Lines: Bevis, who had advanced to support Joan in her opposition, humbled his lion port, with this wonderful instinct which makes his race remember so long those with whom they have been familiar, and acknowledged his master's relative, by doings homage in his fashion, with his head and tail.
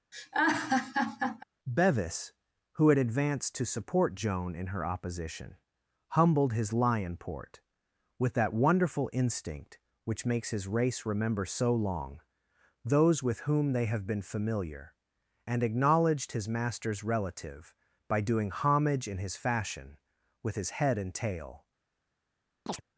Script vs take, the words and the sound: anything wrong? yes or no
yes